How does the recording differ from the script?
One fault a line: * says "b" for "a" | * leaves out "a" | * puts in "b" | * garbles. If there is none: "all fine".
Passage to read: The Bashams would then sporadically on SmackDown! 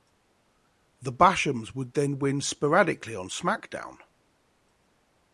* puts in "win"